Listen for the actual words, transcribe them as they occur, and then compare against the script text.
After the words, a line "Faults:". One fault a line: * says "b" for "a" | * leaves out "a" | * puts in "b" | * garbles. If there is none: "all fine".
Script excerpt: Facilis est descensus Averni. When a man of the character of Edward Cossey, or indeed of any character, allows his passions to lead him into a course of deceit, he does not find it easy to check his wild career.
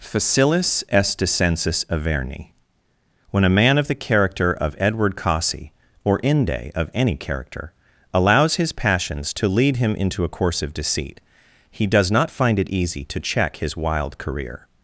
Facilis est descensus Averni. When a man of the character of Edward Cossey, or inde of any character, allows his passions to lead him into a course of deceit, he does not find it easy to check his wild career.
Faults:
* says "inde" for "indeed"